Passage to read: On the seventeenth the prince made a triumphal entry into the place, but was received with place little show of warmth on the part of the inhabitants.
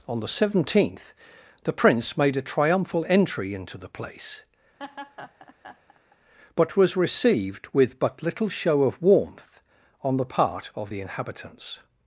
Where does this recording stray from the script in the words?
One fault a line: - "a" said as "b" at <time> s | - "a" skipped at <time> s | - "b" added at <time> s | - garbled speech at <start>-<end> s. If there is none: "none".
- "place" said as "but" at 8.0 s